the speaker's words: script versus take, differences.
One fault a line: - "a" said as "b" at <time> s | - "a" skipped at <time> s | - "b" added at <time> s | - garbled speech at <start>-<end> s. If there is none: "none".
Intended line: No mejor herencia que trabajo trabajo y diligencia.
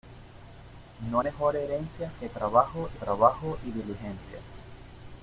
none